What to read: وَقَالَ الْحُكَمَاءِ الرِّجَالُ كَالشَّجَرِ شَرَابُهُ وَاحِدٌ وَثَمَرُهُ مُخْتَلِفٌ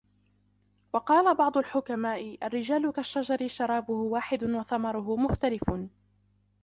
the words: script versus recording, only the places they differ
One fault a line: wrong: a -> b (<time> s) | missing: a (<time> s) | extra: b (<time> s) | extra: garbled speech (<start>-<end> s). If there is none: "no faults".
extra: بَعْضُ (1.4 s)